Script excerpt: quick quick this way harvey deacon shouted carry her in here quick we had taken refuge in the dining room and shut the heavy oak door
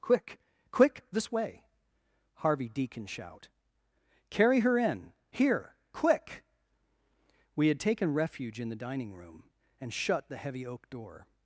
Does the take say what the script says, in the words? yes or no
no